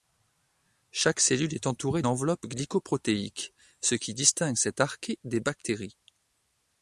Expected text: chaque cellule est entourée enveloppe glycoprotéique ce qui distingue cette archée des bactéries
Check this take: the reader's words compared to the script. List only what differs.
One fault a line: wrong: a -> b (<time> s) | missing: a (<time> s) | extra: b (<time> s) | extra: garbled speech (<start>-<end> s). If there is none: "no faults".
no faults